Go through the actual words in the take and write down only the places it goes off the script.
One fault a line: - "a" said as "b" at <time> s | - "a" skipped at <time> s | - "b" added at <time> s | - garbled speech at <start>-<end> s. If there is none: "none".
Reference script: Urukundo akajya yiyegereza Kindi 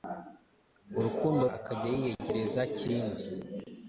none